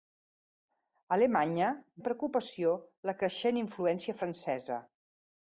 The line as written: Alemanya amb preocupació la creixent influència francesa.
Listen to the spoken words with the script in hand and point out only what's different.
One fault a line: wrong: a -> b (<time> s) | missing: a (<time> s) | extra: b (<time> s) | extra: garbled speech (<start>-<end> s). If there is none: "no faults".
no faults